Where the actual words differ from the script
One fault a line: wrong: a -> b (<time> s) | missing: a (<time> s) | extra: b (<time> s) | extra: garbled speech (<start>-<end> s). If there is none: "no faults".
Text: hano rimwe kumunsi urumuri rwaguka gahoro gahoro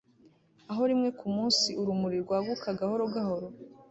wrong: hano -> aho (0.7 s)